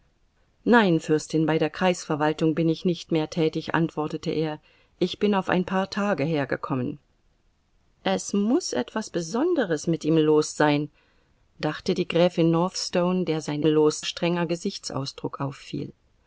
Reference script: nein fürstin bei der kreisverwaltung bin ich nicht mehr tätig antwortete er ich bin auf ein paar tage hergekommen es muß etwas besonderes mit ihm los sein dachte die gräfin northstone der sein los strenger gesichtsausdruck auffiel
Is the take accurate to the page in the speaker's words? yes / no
yes